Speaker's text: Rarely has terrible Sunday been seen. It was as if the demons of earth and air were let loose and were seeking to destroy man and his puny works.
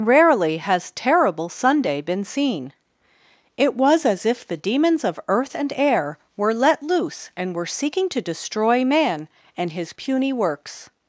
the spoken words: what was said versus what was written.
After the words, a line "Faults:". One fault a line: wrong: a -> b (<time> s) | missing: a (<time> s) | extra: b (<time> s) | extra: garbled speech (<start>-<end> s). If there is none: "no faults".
Rarely has terrible Sunday been seen. It was as if the demons of earth and air were let loose and were seeking to destroy man and his puny works.
Faults:
no faults